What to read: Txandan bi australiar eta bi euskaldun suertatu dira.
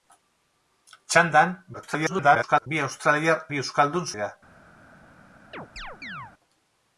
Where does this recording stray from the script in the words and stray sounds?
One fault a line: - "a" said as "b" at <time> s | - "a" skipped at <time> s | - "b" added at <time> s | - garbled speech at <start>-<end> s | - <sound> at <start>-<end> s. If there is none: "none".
- garbled speech at 1.7-2.7 s
- "eta" skipped at 3.4 s
- "suertatu" skipped at 4.1 s
- chirp at 5.5-6.3 s